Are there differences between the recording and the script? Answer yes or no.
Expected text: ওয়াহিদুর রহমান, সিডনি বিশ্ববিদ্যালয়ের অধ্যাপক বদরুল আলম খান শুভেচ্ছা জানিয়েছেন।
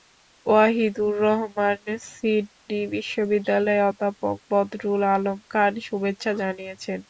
no